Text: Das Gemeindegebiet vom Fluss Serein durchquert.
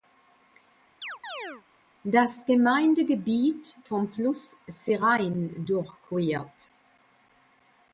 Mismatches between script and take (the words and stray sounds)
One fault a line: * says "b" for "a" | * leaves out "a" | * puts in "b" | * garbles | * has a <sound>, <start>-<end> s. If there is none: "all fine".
* has a chirp, 1.0-1.6 s